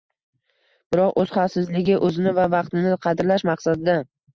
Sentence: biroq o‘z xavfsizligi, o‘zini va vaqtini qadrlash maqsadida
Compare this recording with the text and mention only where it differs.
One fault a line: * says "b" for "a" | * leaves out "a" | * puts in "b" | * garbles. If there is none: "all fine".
all fine